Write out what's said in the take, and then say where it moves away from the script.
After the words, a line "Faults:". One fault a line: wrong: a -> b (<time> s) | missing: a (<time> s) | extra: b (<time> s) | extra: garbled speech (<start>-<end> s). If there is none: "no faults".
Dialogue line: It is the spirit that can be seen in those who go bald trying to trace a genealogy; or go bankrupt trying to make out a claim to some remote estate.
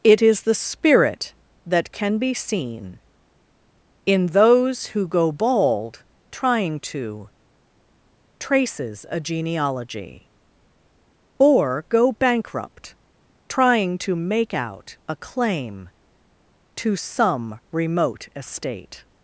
It is the spirit that can be seen in those who go bald trying to traces a genealogy; or go bankrupt trying to make out a claim to some remote estate.
Faults:
wrong: trace -> traces (8.4 s)